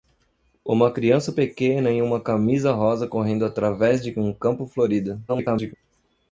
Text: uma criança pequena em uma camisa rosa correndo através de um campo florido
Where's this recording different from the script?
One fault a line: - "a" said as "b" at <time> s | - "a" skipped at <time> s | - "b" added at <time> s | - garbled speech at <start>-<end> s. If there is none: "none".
- garbled speech at 5.3-5.7 s